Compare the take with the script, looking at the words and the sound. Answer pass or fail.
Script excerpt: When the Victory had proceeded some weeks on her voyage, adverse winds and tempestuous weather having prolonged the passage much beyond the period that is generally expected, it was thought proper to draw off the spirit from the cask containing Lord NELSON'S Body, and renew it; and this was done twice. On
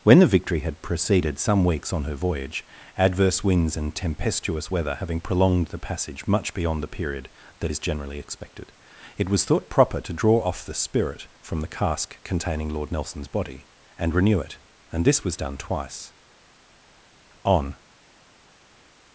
pass